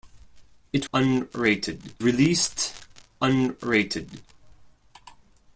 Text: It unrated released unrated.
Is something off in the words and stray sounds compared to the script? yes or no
no